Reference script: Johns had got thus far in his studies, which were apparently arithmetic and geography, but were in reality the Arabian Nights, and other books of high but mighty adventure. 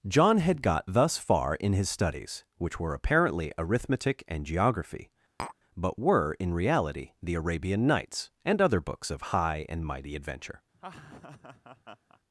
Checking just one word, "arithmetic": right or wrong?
right